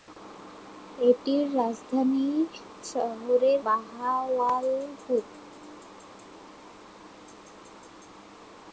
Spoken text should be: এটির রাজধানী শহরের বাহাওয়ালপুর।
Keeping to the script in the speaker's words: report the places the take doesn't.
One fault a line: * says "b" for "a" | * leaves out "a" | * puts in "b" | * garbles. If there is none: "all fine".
all fine